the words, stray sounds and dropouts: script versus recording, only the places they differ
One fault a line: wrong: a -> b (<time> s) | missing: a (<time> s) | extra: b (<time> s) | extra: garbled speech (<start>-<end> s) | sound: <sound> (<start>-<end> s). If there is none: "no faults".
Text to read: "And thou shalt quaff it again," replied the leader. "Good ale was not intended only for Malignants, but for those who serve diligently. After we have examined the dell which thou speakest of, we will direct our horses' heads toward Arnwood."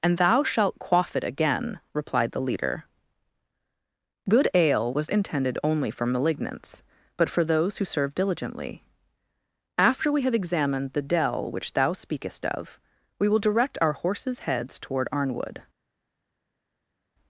missing: not (5.1 s)